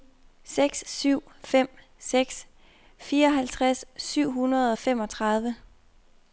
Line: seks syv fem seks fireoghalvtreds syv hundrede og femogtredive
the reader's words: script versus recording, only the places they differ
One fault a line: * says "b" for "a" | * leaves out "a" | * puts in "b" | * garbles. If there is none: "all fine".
all fine